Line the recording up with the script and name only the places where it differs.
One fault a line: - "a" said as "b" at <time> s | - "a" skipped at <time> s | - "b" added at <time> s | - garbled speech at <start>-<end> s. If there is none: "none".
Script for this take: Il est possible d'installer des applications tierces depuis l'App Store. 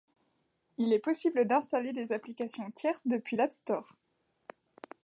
none